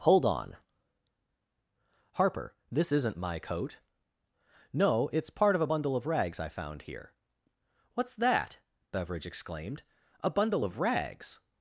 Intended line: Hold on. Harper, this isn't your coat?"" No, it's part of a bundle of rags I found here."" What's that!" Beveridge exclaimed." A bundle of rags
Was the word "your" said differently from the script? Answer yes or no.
yes